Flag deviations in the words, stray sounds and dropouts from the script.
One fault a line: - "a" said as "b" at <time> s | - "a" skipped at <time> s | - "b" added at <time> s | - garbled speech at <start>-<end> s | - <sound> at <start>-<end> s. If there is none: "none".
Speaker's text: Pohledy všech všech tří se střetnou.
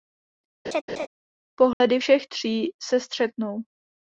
- laugh at 0.6-1.1 s
- dropout at 1.7-1.8 s
- "všech" skipped at 2.3 s